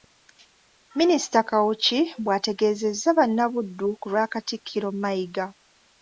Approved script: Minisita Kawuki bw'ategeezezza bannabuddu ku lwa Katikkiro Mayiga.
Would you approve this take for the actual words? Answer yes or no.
yes